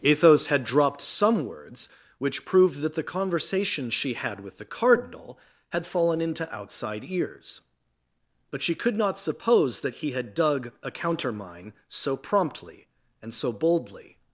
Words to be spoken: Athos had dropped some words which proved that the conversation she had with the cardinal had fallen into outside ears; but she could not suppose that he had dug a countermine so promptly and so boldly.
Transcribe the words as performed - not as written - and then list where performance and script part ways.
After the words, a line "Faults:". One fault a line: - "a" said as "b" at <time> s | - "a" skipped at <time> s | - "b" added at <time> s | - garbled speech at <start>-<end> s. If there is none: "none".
Athos had dropped some words which proved that the conversation she had with the cardinal had fallen into outside ears; but she could not suppose that he had dug a countermine so promptly and so boldly.
Faults:
none